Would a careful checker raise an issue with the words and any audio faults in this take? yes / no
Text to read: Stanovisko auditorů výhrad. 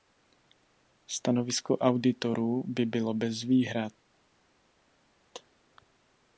yes